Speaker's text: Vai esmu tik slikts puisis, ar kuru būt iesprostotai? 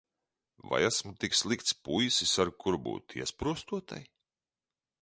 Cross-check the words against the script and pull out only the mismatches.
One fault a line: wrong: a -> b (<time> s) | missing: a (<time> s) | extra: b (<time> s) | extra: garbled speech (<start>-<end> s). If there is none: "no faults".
no faults